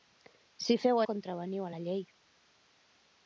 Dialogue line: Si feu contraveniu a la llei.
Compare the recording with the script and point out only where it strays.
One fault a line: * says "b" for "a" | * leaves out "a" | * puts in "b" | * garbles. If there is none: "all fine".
all fine